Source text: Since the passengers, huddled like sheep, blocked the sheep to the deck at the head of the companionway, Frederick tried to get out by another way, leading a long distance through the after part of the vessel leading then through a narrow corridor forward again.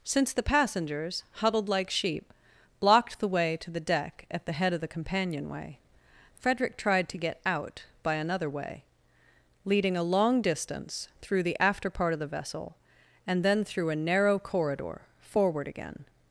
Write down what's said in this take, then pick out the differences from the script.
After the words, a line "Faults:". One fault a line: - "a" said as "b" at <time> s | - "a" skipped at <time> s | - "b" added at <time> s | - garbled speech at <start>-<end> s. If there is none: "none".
Since the passengers, huddled like sheep, blocked the way to the deck at the head of the companionway, Frederick tried to get out by another way, leading a long distance through the after part of the vessel and then through a narrow corridor forward again.
Faults:
- "sheep" said as "way" at 3.3 s
- "leading" said as "and" at 13.3 s